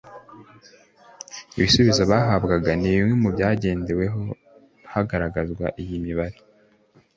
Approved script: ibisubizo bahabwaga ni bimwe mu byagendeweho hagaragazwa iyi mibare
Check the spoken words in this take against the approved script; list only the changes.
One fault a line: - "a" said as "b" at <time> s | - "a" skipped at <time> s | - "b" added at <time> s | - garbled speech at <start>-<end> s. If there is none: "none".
none